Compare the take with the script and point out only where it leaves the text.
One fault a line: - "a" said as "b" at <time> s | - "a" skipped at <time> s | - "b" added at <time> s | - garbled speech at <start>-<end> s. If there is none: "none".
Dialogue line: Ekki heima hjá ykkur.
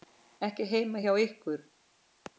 none